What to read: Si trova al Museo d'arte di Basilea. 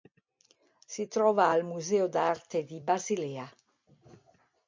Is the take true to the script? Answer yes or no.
yes